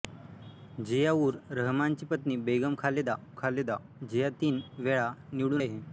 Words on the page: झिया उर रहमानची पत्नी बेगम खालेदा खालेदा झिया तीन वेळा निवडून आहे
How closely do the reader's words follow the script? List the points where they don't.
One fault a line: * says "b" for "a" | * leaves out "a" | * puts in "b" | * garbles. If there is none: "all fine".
all fine